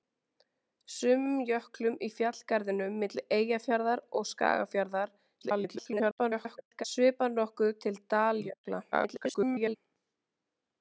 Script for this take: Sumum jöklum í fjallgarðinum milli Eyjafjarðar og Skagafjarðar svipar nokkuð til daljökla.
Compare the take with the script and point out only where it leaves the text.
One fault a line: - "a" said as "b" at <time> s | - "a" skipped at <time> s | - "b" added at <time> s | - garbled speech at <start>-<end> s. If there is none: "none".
- garbled speech at 5.4-6.8 s
- garbled speech at 8.9-9.8 s